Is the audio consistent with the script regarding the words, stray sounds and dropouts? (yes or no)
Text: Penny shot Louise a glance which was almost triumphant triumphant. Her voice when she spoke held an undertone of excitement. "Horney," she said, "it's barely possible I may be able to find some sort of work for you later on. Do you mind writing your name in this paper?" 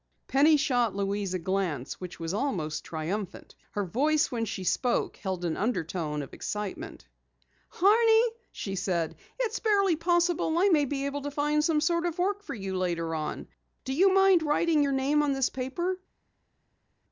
no